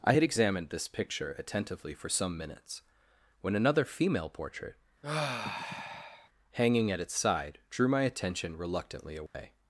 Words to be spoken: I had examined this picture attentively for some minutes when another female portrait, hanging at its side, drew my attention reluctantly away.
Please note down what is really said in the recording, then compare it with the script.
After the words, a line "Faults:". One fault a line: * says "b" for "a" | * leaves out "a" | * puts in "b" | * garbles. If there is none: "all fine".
I had examined this picture attentively for some minutes when another female portrait, hanging at its side, drew my attention reluctantly away.
Faults:
all fine